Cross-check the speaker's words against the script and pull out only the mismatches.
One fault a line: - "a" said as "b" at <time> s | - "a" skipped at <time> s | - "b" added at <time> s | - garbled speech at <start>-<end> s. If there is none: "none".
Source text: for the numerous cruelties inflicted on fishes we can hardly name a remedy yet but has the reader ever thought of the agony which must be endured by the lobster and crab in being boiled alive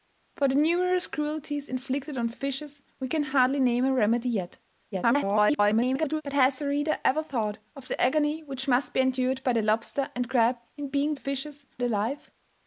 - garbled speech at 4.9-6.2 s
- "boiled" said as "fishes" at 11.1 s